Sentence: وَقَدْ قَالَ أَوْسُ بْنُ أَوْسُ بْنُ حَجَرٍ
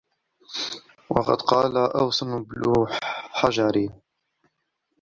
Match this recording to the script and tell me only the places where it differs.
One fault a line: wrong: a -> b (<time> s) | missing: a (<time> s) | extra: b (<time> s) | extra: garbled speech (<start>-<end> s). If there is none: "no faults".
missing: أَوْسُ بْنُ (2.9 s)